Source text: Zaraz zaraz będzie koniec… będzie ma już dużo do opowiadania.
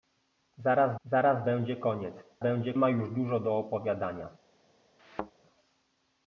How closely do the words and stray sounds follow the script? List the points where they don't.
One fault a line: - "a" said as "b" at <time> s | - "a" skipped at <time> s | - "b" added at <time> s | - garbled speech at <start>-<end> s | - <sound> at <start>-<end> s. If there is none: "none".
- thud at 5.0-5.3 s